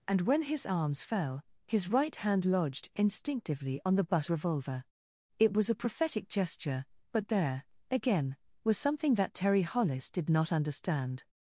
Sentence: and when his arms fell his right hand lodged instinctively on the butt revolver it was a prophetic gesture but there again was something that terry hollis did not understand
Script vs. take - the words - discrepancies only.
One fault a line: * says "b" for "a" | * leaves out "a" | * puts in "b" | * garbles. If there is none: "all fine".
all fine